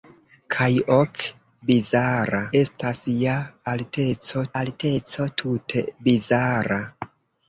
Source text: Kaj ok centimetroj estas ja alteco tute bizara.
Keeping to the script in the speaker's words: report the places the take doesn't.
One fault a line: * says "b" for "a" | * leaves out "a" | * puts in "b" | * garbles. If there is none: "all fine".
* says "bizara" for "centimetroj"
* puts in "alteco"